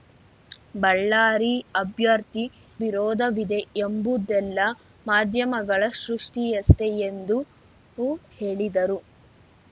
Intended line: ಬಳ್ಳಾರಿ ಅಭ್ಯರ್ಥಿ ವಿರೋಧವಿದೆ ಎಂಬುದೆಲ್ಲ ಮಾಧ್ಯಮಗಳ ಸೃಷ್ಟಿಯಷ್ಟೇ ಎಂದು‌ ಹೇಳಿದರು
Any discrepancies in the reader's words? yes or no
no